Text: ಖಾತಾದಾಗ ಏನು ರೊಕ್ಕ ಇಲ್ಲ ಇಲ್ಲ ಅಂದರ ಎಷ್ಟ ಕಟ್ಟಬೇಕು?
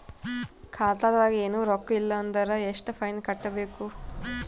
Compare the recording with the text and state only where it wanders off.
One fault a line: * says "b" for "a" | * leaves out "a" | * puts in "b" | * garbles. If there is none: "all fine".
* leaves out "ಇಲ್ಲ"
* puts in "ಫೈನ್"